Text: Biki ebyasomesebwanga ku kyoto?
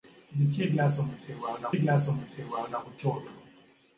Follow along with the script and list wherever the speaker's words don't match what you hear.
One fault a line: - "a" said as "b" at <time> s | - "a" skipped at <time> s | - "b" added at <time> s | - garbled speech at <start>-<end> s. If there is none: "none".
- "ebyasomesebwanga" added at 1.7 s